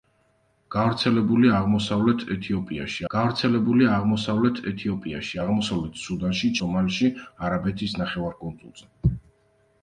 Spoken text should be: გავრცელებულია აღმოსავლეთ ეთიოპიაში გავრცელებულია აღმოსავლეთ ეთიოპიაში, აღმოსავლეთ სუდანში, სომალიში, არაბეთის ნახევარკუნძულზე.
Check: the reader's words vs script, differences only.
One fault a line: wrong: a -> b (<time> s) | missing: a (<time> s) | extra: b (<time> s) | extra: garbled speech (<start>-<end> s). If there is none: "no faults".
no faults